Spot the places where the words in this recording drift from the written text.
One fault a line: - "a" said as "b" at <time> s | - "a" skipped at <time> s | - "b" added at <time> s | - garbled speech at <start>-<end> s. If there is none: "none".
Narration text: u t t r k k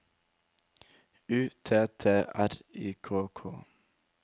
- "y" added at 2.7 s